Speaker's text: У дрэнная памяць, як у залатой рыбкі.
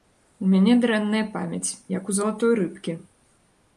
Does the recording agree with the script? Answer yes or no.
no